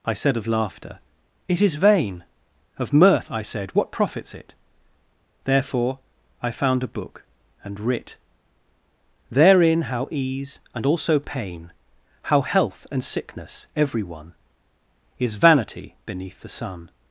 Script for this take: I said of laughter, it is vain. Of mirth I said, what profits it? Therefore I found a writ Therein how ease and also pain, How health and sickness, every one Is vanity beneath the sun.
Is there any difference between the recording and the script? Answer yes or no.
yes